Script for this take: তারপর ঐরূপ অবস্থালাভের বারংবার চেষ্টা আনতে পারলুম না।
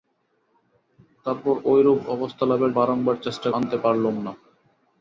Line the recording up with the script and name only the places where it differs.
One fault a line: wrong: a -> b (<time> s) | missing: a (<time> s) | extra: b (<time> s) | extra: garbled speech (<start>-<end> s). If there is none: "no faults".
no faults